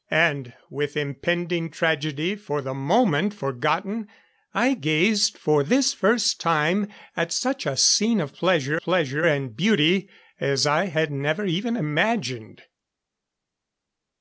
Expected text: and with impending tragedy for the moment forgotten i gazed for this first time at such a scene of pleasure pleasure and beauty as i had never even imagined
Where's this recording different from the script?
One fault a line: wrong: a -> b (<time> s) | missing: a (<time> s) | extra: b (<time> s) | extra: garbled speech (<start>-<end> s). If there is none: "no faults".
no faults